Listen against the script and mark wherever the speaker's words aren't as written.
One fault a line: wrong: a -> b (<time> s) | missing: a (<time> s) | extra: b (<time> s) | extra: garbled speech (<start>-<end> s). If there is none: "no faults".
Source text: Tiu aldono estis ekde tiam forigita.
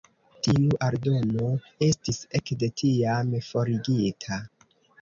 no faults